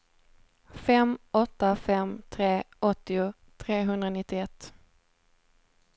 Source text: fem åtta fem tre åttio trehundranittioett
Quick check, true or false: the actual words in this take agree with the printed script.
true